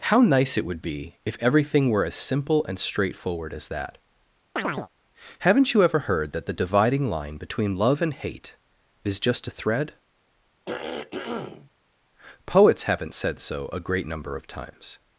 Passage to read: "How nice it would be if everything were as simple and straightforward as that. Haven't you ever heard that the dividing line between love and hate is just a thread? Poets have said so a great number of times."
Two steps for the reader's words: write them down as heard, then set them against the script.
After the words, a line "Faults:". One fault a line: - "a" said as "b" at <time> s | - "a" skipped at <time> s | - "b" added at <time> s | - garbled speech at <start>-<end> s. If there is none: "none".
"How nice it would be if everything were as simple and straightforward as that. Haven't you ever heard that the dividing line between love and hate is just a thread? Poets haven't said so a great number of times."
Faults:
- "have" said as "haven't" at 12.8 s